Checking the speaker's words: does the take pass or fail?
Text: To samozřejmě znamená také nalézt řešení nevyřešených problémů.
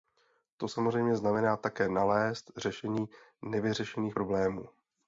pass